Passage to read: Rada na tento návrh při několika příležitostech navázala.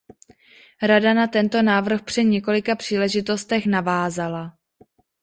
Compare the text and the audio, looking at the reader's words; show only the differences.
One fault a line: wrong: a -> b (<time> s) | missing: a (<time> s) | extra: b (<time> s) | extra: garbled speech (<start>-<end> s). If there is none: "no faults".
no faults